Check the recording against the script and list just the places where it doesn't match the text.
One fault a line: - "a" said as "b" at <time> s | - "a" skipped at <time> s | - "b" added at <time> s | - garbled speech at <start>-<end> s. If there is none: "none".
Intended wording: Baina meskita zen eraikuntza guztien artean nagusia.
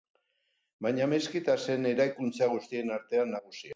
none